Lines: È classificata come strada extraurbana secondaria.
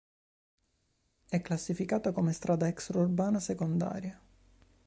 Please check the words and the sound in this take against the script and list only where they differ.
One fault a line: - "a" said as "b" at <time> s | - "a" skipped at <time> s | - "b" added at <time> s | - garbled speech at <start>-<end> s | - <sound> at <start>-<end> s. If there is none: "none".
none